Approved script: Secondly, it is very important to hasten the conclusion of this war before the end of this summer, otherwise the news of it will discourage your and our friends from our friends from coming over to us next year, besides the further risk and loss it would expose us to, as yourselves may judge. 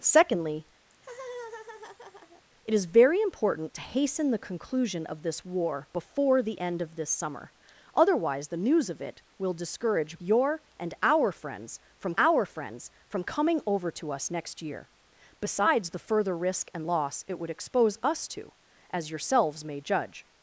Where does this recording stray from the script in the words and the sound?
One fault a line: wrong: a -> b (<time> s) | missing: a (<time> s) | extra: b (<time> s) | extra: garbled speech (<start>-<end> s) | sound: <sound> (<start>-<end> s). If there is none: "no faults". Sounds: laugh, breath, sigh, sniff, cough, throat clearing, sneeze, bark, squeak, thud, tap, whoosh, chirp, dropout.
sound: laugh (0.9-2.4 s)